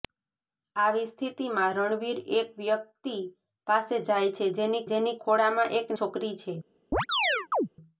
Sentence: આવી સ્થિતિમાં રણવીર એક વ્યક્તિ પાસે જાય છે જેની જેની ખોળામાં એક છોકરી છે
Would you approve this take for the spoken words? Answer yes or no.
yes